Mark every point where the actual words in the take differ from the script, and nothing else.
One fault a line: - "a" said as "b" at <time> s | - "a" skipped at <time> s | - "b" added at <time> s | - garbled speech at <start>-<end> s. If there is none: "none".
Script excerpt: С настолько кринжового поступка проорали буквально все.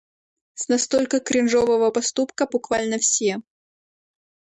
- "проорали" skipped at 2.5 s